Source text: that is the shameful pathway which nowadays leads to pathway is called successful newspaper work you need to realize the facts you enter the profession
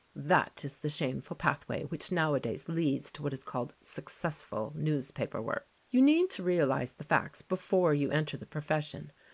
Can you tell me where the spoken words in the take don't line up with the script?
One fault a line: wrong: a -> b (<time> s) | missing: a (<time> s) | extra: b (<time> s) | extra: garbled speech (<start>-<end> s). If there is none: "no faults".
wrong: pathway -> what (3.2 s)
extra: before (7.4 s)